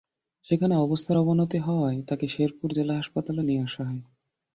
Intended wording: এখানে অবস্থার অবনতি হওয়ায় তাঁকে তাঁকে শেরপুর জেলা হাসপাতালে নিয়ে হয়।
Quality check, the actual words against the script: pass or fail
fail